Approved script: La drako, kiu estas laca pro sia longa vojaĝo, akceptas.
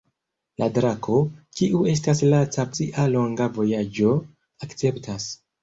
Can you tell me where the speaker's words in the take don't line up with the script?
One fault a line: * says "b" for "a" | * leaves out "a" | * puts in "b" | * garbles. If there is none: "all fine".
* leaves out "pro"